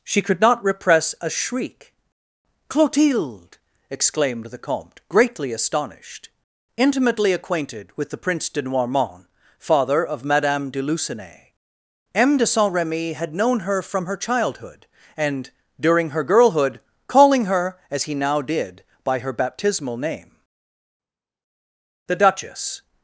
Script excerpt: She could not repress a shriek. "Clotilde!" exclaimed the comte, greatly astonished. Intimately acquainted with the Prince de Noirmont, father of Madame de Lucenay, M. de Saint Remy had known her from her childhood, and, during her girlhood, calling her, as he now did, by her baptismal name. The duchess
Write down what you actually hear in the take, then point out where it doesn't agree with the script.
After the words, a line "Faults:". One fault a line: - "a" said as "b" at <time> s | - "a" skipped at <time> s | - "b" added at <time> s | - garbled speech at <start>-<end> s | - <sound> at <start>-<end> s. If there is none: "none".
She could not repress a shriek. "Clotilde!" exclaimed the comte, greatly astonished. Intimately acquainted with the Prince de Noirmont, father of Madame de Lucenay, M. de Saint Remy had known her from her childhood, and, during her girlhood, calling her, as he now did, by her baptismal name. The duchess
Faults:
none